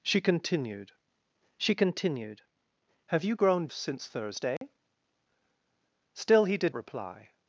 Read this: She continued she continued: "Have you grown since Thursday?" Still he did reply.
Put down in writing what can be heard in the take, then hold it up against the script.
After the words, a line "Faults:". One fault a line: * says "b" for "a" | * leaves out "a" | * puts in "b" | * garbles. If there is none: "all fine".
She continued she continued: "Have you grown since Thursday?" Still he did reply.
Faults:
all fine